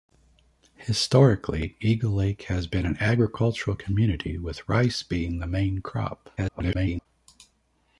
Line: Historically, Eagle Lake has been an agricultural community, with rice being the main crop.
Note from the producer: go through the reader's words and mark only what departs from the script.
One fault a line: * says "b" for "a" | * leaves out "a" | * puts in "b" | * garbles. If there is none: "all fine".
* garbles